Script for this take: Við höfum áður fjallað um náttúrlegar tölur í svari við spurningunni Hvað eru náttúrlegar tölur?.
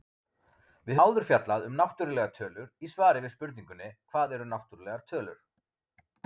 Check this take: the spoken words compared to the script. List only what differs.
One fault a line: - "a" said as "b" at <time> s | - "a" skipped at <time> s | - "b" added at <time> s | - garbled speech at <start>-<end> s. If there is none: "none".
- "höfum" skipped at 1.0 s